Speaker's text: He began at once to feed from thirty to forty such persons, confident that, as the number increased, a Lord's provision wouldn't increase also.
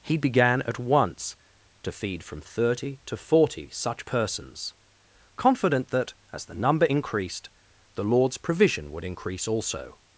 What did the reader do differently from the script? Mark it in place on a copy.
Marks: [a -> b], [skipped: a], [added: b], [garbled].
He began at once to feed from thirty to forty such persons, confident that, as the number increased, [a -> the] Lord's provision [wouldn't -> would] increase also.